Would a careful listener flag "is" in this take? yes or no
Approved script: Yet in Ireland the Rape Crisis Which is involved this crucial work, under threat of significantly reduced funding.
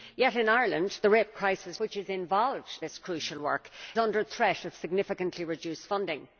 no